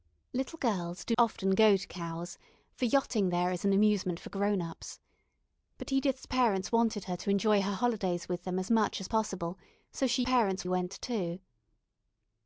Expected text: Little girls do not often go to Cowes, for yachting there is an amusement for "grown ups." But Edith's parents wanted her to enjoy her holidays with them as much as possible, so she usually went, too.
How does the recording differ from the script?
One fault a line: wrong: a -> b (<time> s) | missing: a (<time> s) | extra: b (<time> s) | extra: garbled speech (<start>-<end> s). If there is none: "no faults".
missing: not (1.1 s)
wrong: usually -> parents (10.2 s)